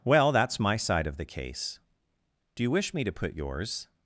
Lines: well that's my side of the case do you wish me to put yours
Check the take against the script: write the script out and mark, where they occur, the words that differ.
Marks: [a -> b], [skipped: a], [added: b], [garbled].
well that's my side of the case do you wish me to put yours